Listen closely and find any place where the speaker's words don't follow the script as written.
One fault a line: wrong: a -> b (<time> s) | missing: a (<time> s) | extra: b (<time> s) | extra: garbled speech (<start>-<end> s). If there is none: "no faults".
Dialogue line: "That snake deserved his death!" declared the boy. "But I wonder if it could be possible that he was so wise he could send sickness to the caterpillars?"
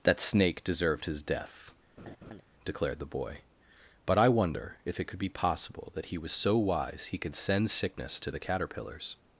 no faults